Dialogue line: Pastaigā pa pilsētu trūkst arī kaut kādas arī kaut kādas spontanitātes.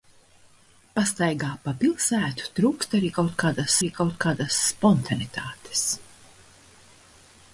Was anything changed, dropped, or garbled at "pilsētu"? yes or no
no